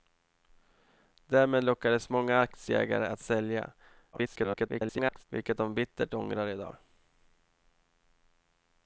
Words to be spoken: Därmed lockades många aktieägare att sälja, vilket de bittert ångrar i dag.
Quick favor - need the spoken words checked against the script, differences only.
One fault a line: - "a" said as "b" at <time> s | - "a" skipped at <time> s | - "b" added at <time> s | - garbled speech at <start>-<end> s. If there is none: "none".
- garbled speech at 4.1-5.2 s